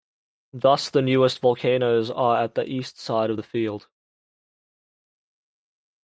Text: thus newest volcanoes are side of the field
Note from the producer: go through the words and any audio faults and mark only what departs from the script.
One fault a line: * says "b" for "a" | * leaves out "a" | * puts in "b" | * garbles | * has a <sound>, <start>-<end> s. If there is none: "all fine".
* puts in "the"
* puts in "at the east"